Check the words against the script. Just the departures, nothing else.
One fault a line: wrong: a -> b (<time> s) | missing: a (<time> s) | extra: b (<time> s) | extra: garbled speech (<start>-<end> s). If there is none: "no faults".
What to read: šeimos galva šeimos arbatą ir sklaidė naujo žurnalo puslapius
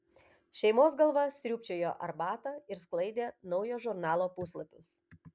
wrong: šeimos -> sriūbčiojo (1.4 s)